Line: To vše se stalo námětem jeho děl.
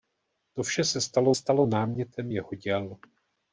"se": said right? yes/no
yes